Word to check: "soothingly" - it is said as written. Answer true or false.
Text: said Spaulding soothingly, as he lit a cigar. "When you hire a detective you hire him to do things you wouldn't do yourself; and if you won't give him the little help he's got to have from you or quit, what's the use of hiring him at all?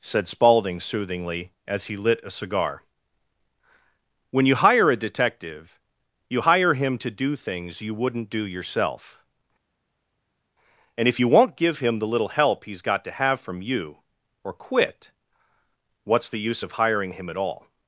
true